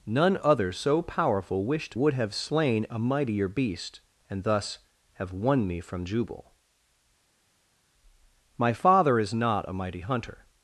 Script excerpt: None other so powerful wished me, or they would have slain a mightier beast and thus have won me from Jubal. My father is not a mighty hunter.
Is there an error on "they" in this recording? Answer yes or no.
yes